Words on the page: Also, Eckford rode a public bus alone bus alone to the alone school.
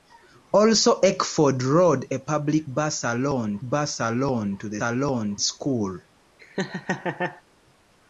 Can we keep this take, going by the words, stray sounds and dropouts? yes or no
no